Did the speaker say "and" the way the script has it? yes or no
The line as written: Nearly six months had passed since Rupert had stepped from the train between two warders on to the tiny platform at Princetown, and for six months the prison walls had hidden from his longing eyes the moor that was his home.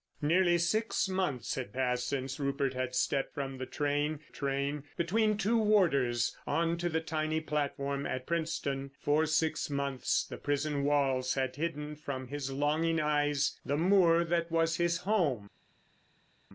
no